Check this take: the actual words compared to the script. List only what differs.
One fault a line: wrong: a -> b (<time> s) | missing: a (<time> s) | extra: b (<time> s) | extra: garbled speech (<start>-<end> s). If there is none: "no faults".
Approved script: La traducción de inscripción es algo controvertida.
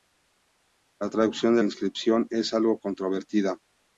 no faults